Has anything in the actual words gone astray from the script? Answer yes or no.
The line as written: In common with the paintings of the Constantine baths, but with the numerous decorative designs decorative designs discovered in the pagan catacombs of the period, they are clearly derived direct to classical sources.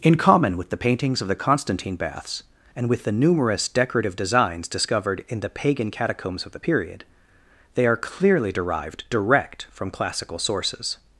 yes